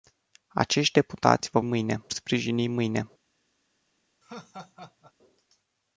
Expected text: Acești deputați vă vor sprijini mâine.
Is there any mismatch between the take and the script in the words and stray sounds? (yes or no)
yes